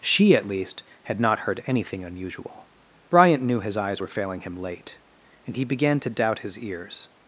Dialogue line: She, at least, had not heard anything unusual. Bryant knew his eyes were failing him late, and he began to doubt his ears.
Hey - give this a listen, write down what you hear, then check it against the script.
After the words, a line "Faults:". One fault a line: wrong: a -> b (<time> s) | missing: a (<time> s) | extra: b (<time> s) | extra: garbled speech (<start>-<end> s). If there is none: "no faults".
She, at least, had not heard anything unusual. Bryant knew his eyes were failing him late, and he began to doubt his ears.
Faults:
no faults